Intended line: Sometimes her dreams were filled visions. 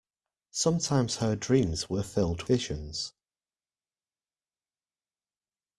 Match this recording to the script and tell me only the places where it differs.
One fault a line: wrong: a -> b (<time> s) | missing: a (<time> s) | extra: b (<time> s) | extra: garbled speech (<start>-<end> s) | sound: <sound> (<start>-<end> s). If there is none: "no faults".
no faults